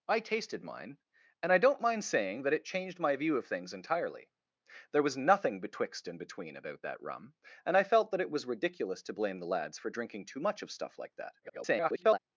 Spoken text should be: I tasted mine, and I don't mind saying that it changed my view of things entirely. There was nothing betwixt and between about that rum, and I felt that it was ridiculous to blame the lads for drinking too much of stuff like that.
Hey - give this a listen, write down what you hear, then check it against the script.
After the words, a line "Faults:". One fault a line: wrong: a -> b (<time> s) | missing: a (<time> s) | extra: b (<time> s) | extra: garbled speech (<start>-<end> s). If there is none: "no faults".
I tasted mine, and I don't mind saying that it changed my view of things entirely. There was nothing betwixt and between about that rum, and I felt that it was ridiculous to blame the lads for drinking too much of stuff like that. [garbled]
Faults:
extra: garbled speech (11.4-12.2 s)